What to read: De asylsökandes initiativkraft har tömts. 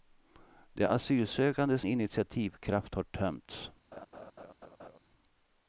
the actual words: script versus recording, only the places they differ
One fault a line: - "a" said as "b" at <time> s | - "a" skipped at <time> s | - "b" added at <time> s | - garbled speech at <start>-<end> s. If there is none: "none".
none